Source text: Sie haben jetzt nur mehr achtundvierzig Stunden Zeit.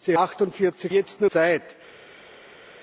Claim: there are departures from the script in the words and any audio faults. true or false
true